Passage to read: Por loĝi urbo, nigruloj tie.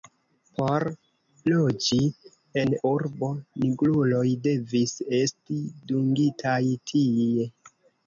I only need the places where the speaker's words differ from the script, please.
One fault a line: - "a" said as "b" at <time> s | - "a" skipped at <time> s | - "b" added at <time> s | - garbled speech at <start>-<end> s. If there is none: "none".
- "en" added at 2.6 s
- "devis esti dungitaj" added at 4.5 s